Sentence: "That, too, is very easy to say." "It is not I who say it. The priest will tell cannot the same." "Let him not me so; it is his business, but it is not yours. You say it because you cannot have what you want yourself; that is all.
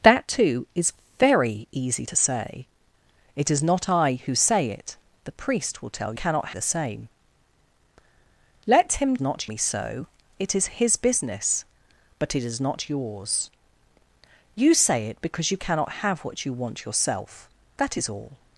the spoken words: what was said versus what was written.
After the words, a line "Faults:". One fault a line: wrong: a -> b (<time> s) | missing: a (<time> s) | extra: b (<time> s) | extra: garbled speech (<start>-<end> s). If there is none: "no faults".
"That, too, is very easy to say." "It is not I who say it. The priest will tell cannot the same." "Let him not me so; it is his business, but it is not yours. You say it because you cannot have what you want yourself; that is all.
Faults:
no faults